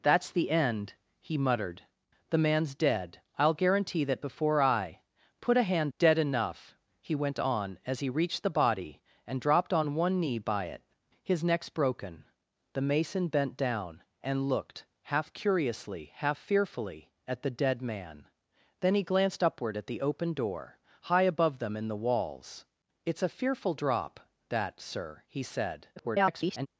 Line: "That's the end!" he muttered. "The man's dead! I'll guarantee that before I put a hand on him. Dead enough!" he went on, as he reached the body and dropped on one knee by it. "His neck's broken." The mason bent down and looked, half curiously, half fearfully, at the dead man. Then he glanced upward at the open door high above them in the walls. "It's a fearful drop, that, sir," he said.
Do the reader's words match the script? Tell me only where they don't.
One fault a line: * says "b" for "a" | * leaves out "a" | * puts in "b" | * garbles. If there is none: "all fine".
* leaves out "on him"
* garbles